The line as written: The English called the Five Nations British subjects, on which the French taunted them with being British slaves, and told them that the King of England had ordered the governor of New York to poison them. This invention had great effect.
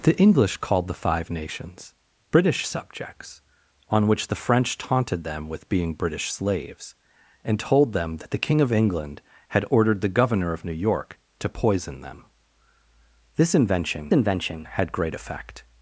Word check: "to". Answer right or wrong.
right